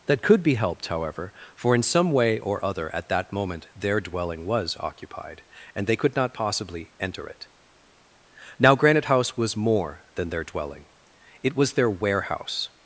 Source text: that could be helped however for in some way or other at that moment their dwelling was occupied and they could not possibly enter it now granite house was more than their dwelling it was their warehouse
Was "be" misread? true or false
false